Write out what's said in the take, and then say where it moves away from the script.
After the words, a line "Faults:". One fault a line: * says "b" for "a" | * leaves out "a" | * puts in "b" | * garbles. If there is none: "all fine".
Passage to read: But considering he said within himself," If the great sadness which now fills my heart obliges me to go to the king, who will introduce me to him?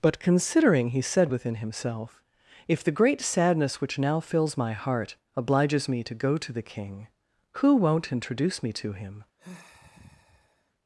But considering he said within himself," If the great sadness which now fills my heart obliges me to go to the king, who won't introduce me to him?
Faults:
* says "won't" for "will"